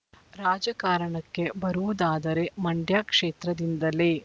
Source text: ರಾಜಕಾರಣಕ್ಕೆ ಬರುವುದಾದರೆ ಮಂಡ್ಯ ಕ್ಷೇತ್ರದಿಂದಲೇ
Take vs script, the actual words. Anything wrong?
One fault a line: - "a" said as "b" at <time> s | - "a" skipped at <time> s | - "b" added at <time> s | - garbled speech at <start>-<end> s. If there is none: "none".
none